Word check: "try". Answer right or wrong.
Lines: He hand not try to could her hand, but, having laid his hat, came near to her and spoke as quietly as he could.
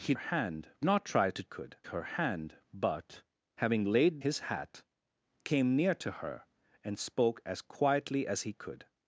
right